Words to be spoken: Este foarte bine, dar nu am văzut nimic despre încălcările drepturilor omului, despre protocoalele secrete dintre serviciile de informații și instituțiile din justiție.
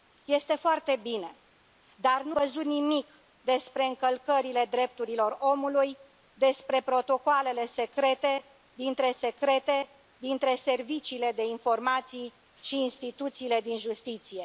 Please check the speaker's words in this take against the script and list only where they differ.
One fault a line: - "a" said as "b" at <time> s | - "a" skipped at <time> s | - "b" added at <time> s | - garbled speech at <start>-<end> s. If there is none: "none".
- "am" skipped at 2.4 s
- "secrete dintre" added at 9.1 s